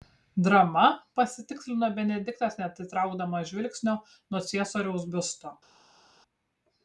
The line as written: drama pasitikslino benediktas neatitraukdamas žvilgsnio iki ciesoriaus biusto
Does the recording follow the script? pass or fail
fail